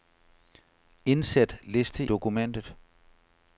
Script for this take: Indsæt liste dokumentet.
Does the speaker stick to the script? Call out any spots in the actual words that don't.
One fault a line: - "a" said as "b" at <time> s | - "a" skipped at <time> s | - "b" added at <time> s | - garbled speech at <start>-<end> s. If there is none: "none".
none